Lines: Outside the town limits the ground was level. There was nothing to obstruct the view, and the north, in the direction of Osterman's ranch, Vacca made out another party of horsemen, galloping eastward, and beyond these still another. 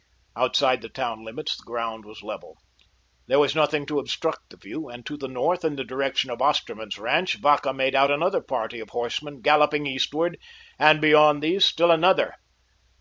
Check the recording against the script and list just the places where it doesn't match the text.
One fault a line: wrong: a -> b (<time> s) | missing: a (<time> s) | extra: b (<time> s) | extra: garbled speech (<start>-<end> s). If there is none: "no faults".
extra: to (5.0 s)